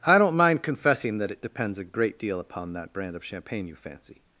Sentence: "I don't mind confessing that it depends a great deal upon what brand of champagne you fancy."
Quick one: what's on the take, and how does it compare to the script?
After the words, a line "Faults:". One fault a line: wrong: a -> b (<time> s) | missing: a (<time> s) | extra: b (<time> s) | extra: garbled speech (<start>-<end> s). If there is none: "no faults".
"I don't mind confessing that it depends a great deal upon that brand of champagne you fancy."
Faults:
wrong: what -> that (2.7 s)